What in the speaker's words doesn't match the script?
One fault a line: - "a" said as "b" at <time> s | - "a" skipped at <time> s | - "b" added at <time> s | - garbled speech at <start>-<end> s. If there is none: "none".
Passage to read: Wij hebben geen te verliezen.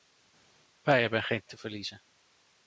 none